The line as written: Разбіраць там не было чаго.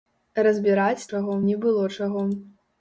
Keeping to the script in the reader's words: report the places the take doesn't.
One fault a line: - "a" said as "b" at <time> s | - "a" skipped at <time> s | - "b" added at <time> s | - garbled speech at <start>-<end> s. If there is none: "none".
- "там" said as "чаго" at 1.1 s